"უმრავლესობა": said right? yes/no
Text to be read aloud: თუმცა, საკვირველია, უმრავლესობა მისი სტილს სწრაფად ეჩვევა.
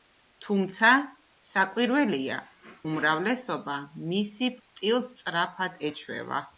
yes